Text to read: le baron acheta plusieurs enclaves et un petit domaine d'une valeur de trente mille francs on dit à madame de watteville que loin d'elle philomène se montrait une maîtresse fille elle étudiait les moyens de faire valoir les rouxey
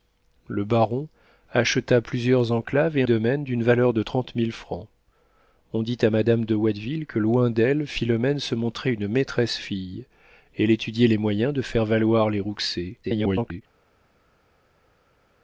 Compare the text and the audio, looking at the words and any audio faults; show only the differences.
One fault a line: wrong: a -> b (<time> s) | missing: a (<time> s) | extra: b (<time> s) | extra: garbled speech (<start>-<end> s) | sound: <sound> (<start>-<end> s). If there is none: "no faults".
missing: un petit (3.0 s)
extra: garbled speech (13.0-13.6 s)